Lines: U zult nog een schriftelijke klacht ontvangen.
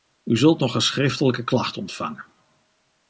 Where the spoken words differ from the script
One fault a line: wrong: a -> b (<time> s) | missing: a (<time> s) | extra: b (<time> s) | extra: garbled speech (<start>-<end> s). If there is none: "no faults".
no faults